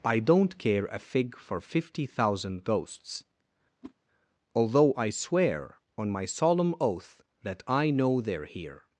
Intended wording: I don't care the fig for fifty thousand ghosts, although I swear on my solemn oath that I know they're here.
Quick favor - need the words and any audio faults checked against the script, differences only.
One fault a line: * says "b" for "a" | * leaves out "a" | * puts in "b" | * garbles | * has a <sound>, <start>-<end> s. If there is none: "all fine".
* says "a" for "the"
* has a whoosh, 3.8-3.9 s